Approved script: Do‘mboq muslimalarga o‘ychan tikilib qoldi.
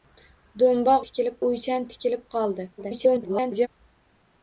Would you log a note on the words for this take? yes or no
yes